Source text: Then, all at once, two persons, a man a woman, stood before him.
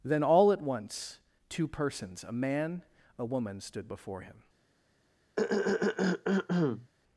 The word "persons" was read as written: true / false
true